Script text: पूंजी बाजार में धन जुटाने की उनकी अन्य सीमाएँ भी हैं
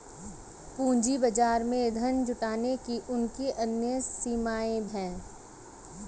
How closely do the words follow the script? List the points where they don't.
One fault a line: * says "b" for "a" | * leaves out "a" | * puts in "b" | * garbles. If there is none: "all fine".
* leaves out "भी"